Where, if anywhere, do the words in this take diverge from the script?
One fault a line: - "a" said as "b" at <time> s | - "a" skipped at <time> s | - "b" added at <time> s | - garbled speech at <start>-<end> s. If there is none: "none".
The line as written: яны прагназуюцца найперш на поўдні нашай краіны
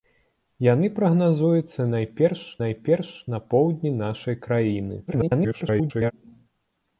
- "найперш" added at 2.6 s
- garbled speech at 5.1-6.1 s